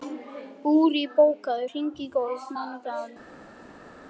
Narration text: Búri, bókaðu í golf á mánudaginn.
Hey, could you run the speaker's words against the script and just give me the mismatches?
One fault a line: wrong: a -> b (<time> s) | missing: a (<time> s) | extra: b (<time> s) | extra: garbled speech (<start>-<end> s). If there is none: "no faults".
extra: hring (1.7 s)